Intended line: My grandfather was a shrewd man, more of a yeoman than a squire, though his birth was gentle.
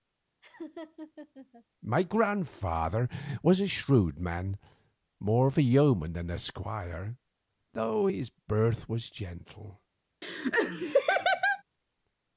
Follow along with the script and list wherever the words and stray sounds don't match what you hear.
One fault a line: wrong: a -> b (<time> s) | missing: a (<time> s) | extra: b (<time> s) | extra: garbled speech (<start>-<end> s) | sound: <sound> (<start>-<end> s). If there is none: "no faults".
sound: laugh (0.4-1.6 s)
sound: laugh (10.2-11.6 s)